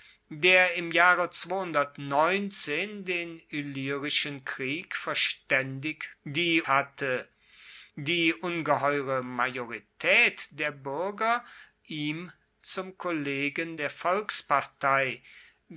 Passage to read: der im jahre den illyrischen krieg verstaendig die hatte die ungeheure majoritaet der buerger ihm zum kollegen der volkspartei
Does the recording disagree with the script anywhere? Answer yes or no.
no